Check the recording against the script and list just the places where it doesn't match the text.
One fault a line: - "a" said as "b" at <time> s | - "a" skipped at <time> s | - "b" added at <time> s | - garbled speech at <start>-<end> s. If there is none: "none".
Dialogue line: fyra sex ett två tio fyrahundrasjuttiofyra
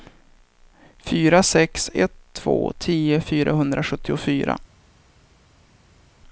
none